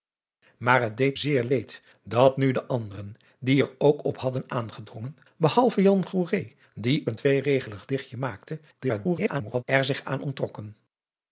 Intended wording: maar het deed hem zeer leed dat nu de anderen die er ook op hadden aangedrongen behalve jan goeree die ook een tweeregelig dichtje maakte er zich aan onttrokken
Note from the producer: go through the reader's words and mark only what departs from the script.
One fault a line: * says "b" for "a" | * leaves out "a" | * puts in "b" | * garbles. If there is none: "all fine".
* leaves out "hem"
* leaves out "ook"
* garbles